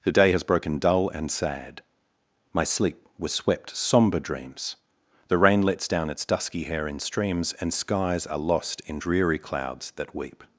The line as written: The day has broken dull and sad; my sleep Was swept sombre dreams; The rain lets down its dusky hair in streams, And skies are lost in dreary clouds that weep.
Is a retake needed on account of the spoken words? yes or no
no